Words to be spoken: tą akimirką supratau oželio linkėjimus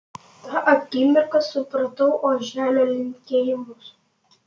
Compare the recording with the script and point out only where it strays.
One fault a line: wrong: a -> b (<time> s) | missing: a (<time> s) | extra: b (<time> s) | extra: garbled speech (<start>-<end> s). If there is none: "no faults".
no faults